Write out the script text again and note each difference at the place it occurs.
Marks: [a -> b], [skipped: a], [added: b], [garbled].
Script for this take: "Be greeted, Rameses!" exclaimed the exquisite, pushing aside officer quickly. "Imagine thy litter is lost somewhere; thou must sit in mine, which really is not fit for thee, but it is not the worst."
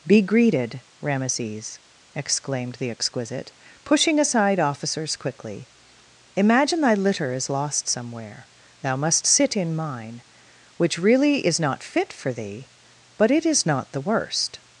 "Be greeted, Rameses!" exclaimed the exquisite, pushing aside [officer -> officers] quickly. "Imagine thy litter is lost somewhere; thou must sit in mine, which really is not fit for thee, but it is not the worst."